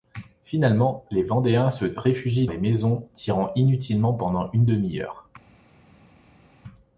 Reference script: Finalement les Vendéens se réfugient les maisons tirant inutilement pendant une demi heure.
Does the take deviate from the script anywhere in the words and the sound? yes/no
no